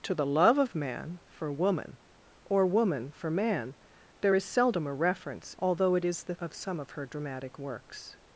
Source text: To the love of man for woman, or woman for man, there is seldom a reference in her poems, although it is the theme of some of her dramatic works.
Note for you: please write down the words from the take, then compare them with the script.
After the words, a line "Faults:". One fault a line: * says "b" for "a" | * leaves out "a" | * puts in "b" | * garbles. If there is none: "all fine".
To the love of man for woman, or woman for man, there is seldom a reference although it is the of some of her dramatic works.
Faults:
* leaves out "in her poems"
* leaves out "theme"